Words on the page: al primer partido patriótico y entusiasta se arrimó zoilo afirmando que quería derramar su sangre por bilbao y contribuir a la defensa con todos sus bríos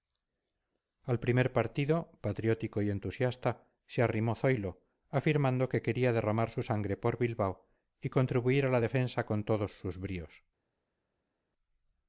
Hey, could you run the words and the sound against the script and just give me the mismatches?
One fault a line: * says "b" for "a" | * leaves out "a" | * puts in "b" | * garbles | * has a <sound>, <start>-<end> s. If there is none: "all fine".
all fine